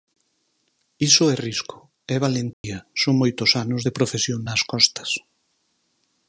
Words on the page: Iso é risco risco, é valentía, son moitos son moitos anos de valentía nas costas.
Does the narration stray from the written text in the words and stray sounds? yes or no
yes